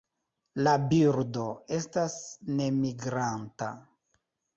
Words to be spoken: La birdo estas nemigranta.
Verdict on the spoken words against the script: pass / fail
pass